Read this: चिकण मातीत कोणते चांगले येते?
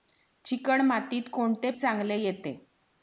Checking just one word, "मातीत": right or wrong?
right